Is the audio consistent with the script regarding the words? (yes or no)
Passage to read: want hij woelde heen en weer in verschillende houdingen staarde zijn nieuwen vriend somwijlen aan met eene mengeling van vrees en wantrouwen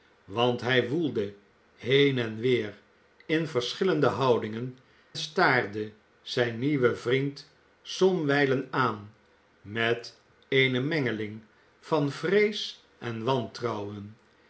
yes